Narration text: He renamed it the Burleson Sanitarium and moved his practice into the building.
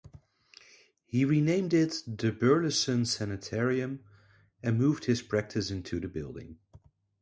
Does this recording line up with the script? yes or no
yes